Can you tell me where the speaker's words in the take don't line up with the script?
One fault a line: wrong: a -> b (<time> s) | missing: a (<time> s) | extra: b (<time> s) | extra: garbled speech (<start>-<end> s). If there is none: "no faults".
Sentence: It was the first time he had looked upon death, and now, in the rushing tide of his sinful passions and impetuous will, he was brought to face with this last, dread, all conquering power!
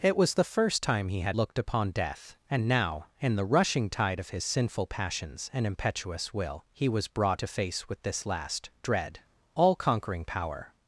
no faults